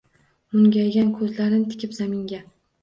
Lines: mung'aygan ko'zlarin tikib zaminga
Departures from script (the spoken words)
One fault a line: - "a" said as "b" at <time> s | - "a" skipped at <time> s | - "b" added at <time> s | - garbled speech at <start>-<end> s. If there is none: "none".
none